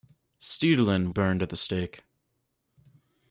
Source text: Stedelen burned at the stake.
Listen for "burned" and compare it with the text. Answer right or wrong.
right